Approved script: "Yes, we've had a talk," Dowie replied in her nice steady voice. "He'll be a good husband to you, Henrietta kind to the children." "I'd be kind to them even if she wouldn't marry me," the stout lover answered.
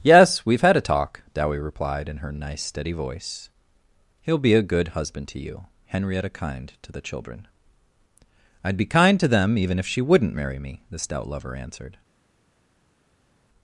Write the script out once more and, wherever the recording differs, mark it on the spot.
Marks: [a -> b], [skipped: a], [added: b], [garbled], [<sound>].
"Yes, we've had a talk," Dowie replied in her nice steady voice. "He'll be a good husband to you, Henrietta kind to the children." "I'd be kind to them even if she wouldn't marry me," the stout lover answered.